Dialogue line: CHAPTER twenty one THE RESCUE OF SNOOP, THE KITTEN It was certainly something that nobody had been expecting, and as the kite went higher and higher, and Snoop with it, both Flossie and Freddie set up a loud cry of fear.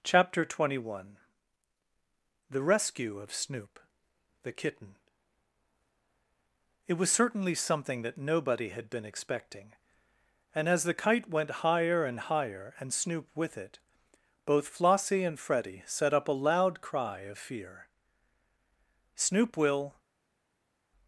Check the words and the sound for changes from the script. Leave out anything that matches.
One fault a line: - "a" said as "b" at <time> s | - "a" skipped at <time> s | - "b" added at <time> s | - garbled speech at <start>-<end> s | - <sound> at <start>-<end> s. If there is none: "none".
- "Snoop will" added at 19.1 s